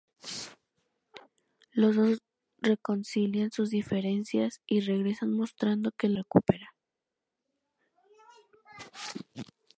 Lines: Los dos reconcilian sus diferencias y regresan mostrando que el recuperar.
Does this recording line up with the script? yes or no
yes